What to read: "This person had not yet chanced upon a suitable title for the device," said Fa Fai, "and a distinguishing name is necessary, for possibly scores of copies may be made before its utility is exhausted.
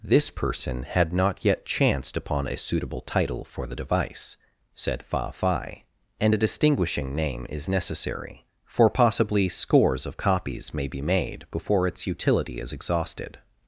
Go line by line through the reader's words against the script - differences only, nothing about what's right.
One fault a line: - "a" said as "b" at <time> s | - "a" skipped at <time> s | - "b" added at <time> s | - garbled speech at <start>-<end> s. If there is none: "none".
none